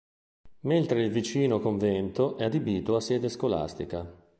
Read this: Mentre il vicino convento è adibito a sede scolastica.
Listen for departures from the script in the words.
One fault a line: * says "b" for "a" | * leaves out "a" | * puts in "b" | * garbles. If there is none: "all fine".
all fine